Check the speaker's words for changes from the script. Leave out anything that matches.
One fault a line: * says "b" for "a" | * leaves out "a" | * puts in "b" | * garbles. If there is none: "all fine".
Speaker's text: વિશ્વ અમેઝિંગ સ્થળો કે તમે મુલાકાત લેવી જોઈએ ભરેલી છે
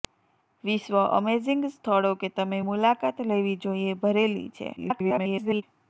* garbles